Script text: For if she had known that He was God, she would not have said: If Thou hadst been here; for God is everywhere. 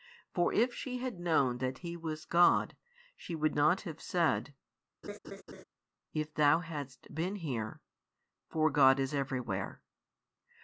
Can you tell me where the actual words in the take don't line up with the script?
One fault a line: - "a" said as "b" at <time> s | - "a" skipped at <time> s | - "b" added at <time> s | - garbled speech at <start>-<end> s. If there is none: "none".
none